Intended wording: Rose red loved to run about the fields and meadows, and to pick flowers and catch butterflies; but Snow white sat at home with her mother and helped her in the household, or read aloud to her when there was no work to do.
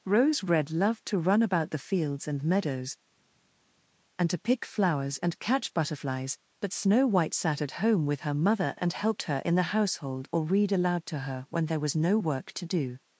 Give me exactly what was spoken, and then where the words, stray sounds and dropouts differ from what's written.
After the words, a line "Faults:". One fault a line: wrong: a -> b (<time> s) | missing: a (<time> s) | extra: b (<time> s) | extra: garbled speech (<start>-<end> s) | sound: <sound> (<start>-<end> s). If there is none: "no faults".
Rose red loved to run about the fields and meadows, and to pick flowers and catch butterflies; but Snow white sat at home with her mother and helped her in the household, or read aloud to her when there was no work to do.
Faults:
no faults